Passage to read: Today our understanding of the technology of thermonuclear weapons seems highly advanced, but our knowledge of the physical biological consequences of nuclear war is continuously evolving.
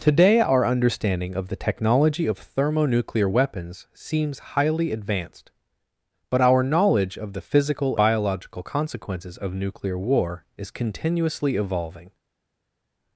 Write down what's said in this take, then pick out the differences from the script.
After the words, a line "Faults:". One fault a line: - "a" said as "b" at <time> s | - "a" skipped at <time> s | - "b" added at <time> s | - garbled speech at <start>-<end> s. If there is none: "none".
Today our understanding of the technology of thermonuclear weapons seems highly advanced, but our knowledge of the physical biological consequences of nuclear war is continuously evolving.
Faults:
none